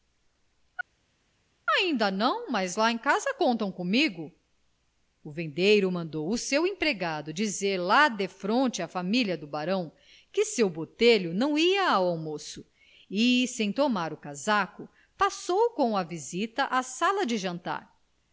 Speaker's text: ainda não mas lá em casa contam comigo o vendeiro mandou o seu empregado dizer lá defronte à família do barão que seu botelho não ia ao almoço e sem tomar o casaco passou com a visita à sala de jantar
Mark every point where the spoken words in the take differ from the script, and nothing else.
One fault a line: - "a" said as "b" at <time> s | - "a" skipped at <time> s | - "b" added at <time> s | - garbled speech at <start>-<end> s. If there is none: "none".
none